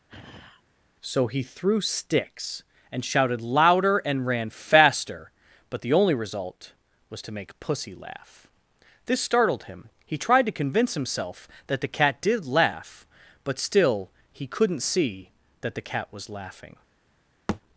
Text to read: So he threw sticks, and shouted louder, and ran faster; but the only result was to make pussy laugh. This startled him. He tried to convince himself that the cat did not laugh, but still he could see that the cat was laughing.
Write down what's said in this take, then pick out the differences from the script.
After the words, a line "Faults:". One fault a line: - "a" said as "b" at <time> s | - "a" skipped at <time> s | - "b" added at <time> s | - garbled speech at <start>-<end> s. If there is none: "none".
So he threw sticks, and shouted louder, and ran faster; but the only result was to make pussy laugh. This startled him. He tried to convince himself that the cat did laugh, but still he couldn't see that the cat was laughing.
Faults:
- "not" skipped at 12.5 s
- "could" said as "couldn't" at 14.5 s